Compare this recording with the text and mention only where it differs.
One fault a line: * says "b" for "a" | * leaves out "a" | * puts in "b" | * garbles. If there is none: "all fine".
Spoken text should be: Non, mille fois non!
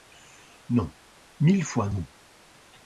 all fine